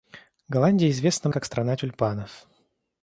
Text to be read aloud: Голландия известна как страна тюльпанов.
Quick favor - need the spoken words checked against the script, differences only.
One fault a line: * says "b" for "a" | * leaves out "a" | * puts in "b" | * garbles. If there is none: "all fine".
all fine